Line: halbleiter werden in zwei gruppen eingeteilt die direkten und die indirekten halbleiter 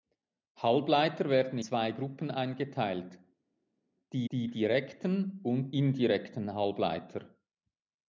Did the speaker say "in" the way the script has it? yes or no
no